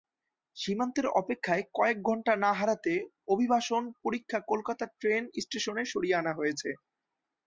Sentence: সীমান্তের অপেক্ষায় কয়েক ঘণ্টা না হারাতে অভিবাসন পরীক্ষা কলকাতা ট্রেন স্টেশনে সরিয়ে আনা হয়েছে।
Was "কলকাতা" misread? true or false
false